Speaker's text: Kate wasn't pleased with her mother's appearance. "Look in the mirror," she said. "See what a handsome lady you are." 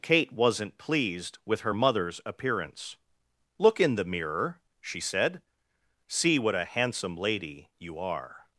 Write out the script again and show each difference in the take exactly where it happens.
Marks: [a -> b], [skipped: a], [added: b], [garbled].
Kate wasn't pleased with her mother's appearance. "Look in the mirror," she said. "See what a handsome lady you are."